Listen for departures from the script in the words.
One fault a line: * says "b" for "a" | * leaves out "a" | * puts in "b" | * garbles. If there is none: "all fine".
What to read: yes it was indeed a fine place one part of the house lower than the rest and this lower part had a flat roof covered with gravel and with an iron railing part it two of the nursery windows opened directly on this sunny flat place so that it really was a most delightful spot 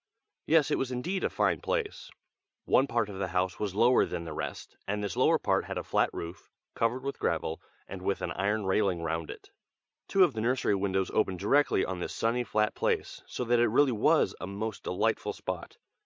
* puts in "was"
* says "round" for "part"